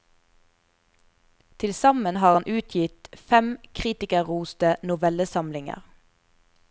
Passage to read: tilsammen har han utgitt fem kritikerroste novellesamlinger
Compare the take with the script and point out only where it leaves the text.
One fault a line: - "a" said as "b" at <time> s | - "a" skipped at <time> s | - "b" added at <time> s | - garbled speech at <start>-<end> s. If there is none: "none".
none